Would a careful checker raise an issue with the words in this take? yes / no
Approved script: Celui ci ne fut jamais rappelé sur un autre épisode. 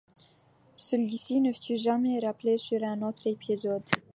no